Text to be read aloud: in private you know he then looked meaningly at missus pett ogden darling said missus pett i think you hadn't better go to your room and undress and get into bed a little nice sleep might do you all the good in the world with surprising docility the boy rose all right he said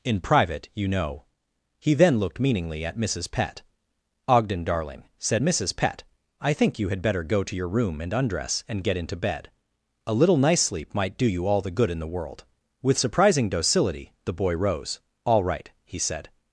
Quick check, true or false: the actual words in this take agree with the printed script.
false